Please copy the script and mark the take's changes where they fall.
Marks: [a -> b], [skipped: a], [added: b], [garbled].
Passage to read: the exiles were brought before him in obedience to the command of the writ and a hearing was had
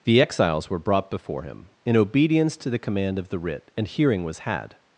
the exiles were brought before him in obedience to the command of the writ and [skipped: a] hearing was had